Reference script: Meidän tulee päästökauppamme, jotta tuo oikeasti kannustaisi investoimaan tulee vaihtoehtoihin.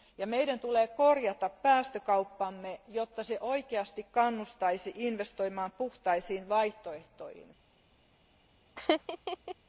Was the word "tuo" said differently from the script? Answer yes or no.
yes